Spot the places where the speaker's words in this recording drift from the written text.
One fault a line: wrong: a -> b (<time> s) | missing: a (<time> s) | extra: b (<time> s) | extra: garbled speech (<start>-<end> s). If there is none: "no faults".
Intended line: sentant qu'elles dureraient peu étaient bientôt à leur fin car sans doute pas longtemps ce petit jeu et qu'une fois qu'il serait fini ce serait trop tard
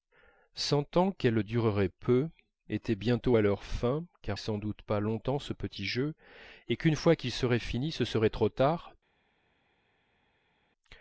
no faults